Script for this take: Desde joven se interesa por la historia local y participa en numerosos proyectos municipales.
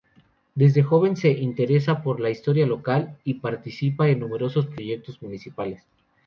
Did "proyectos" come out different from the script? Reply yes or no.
no